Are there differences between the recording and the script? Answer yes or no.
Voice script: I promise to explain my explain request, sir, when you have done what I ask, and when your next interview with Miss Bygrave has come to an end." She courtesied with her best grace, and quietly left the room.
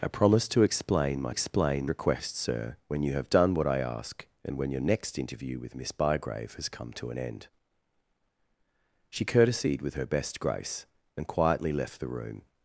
no